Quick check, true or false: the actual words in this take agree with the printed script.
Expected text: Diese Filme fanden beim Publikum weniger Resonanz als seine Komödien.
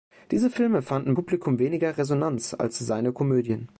false